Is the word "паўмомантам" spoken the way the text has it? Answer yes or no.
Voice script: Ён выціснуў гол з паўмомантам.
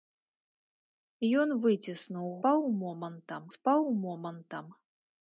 yes